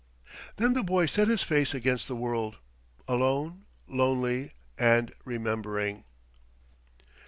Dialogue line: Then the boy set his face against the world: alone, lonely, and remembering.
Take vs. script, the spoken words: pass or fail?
pass